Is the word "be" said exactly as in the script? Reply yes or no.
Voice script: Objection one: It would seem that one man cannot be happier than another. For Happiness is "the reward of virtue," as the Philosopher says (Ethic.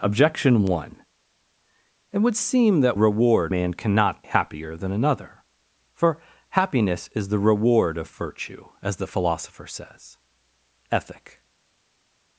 no